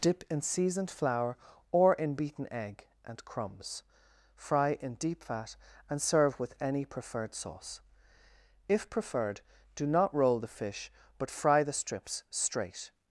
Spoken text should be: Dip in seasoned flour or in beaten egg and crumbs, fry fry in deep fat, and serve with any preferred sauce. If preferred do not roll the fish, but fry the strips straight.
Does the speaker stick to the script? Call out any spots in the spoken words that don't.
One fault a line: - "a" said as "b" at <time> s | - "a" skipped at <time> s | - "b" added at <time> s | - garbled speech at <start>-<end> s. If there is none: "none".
- "fry" skipped at 4.8 s